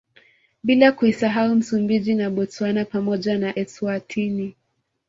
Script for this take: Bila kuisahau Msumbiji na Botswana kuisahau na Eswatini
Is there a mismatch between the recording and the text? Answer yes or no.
yes